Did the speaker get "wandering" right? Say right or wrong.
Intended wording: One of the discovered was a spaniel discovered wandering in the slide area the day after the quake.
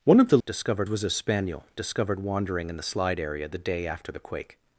right